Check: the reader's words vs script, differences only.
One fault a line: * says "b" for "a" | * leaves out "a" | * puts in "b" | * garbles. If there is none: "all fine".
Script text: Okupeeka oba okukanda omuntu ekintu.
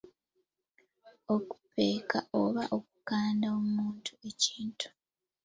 all fine